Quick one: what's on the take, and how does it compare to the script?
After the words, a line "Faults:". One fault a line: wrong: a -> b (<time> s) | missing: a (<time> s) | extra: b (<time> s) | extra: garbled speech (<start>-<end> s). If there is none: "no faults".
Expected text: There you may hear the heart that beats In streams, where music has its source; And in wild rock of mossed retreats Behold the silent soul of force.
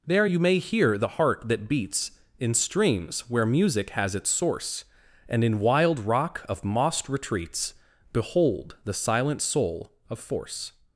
There you may hear the heart that beats In streams, where music has its source; And in wild rock of mossed retreats Behold the silent soul of force.
Faults:
no faults